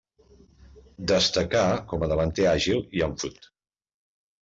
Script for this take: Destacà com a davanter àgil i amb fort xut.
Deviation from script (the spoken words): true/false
true